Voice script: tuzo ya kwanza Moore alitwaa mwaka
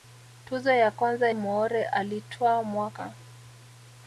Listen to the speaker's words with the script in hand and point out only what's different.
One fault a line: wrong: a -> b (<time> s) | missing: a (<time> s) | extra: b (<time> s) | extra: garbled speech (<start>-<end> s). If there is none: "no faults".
no faults